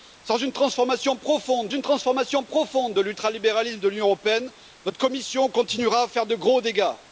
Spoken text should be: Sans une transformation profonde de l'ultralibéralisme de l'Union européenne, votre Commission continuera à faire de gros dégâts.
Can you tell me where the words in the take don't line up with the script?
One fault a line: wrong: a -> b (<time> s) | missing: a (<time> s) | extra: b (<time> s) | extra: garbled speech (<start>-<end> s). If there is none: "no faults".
extra: une transformation profonde (1.7 s)